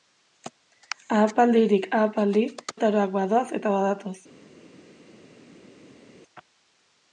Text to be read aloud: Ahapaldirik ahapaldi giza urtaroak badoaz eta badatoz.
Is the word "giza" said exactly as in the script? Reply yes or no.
no